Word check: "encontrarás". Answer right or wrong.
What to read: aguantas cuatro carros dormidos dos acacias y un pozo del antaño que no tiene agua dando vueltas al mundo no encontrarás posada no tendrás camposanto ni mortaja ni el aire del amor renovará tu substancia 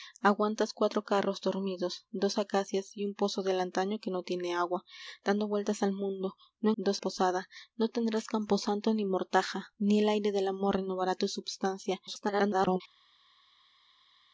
wrong